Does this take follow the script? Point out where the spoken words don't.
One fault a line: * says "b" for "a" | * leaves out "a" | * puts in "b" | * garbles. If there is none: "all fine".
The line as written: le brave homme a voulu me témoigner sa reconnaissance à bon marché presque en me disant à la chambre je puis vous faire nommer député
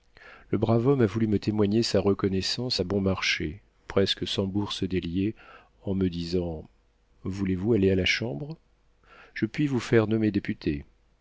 * puts in "sans bourse délier"
* puts in "voulez vous aller"